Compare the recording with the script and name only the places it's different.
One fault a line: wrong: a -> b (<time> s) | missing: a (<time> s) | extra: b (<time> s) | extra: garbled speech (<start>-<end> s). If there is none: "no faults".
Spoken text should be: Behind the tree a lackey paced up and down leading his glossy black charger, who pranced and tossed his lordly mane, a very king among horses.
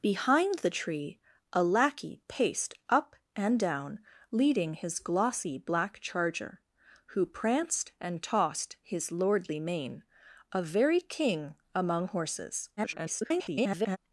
extra: garbled speech (12.8-14.0 s)